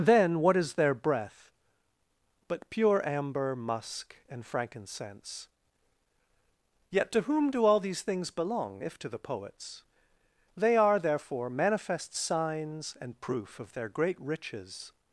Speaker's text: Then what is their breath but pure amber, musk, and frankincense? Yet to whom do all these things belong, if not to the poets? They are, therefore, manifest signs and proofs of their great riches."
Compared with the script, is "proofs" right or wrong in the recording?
wrong